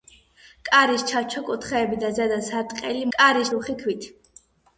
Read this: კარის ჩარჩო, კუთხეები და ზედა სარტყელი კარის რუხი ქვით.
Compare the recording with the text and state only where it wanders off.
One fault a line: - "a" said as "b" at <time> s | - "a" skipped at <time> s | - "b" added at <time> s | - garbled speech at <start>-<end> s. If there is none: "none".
none